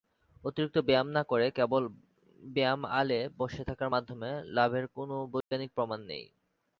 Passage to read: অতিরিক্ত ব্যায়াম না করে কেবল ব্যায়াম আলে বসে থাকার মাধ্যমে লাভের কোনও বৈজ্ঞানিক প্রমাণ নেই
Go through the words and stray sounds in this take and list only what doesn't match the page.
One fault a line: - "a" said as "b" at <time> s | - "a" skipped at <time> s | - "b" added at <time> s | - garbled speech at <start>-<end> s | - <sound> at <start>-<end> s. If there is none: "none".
- dropout at 5.4-5.5 s